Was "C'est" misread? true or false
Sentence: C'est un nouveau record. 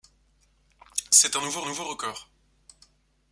false